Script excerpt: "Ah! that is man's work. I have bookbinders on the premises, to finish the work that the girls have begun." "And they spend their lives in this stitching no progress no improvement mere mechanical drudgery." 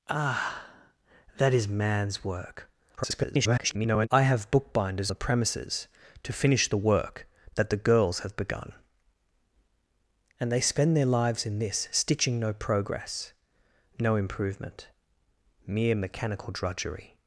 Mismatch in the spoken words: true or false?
true